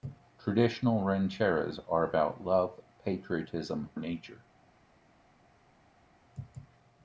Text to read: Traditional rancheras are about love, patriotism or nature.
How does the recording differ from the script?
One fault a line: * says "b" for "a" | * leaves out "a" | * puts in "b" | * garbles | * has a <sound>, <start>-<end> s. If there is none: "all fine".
* leaves out "or"